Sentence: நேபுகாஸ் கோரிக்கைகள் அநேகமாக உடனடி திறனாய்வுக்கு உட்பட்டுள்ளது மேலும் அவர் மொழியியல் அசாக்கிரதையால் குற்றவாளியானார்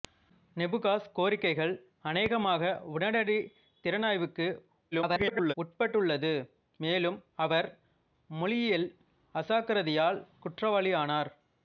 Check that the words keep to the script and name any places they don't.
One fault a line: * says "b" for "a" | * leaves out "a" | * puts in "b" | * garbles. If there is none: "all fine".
* garbles